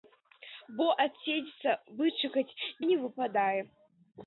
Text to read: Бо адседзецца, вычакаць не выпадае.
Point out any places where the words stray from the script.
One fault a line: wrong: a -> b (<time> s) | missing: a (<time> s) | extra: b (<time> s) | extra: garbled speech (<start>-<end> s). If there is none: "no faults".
no faults